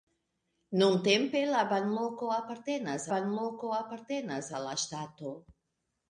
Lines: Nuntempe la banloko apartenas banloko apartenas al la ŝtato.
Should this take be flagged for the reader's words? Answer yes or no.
no